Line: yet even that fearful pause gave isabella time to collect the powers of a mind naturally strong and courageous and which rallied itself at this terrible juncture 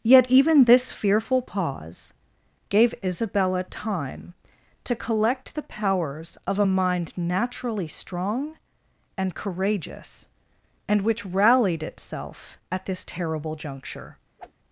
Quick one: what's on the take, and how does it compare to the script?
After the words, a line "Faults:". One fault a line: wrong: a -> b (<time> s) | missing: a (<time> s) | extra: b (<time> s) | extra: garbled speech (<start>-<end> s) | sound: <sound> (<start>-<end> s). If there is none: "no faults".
yet even this fearful pause gave isabella time to collect the powers of a mind naturally strong and courageous and which rallied itself at this terrible juncture
Faults:
wrong: that -> this (0.6 s)
sound: whoosh (14.4-14.5 s)